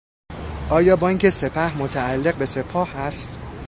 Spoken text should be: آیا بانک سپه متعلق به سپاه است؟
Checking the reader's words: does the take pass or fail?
pass